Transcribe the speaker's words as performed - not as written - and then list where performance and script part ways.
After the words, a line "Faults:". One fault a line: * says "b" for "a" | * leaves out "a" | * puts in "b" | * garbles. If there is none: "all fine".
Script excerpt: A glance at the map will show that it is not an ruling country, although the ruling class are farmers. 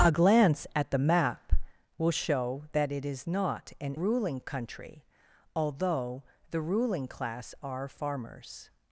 A glance at the map will show that it is not an ruling country, although the ruling class are farmers.
Faults:
all fine